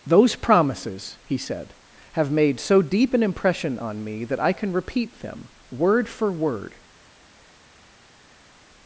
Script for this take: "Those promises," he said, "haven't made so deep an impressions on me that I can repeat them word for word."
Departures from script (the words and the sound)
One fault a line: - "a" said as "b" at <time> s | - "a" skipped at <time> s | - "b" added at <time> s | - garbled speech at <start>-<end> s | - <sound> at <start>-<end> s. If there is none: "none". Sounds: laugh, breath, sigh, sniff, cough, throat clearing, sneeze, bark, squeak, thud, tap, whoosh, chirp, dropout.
- "haven't" said as "have" at 2.1 s
- "impressions" said as "impression" at 3.2 s